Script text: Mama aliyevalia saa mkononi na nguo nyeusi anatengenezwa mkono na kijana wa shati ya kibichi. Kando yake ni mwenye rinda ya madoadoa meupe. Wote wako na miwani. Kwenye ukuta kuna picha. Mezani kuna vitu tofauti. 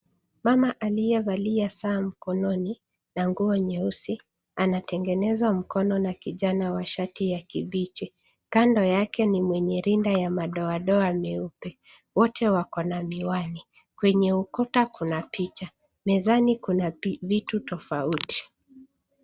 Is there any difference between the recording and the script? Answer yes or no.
no